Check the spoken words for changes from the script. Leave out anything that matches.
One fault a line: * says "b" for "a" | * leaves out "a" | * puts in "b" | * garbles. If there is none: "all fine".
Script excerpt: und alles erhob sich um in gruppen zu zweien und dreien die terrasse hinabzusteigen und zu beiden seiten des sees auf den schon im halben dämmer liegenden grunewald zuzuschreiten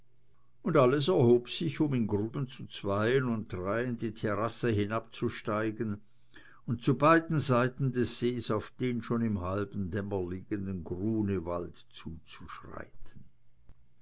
all fine